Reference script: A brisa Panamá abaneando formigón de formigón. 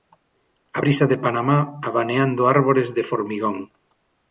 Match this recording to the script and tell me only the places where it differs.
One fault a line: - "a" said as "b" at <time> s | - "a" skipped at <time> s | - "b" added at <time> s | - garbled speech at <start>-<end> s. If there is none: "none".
- "de" added at 1.1 s
- "formigón" said as "árbores" at 2.5 s